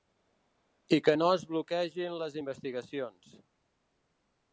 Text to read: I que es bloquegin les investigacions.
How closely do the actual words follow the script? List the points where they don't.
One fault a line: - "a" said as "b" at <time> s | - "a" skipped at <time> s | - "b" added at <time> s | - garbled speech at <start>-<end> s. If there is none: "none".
- "no" added at 1.2 s